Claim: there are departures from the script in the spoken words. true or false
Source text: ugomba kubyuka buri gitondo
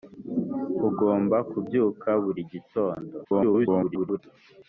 true